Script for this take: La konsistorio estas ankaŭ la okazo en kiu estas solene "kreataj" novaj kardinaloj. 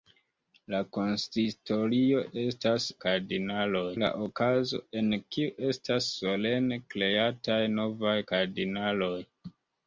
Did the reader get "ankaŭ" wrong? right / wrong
wrong